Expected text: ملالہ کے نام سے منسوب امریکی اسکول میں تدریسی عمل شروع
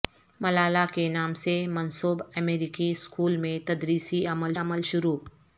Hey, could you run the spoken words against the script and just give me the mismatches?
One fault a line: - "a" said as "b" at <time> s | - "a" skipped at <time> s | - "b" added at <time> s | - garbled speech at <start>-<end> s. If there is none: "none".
- "عمل" added at 4.6 s